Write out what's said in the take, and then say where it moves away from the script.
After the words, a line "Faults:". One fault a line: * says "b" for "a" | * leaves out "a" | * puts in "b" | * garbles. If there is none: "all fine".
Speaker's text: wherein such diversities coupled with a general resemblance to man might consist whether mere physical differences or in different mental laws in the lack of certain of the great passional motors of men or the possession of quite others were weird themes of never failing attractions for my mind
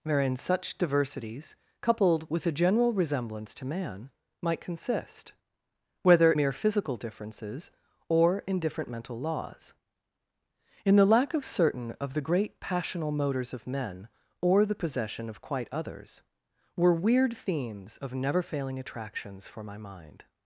wherein such diversities coupled with a general resemblance to man might consist whether mere physical differences or in different mental laws in the lack of certain of the great passional motors of men or the possession of quite others were weird themes of never failing attractions for my mind
Faults:
all fine